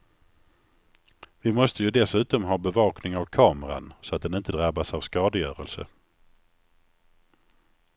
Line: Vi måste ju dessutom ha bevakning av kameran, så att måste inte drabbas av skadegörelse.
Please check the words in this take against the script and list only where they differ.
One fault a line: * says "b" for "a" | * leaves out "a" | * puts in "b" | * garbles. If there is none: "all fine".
* says "den" for "måste"